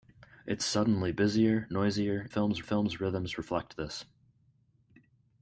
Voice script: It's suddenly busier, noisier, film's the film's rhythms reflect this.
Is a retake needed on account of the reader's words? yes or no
no